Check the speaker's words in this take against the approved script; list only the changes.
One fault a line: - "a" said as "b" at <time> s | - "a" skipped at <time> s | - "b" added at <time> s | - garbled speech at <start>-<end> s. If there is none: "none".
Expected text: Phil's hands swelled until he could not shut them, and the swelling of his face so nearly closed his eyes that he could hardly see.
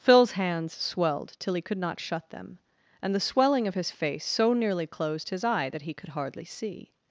- "until" said as "till" at 1.4 s
- "eyes" said as "eye" at 5.4 s